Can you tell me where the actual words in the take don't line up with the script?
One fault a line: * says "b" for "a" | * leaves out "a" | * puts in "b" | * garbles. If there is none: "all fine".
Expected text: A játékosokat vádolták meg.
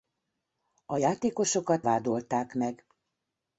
all fine